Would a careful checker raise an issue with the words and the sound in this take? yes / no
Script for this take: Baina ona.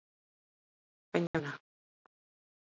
yes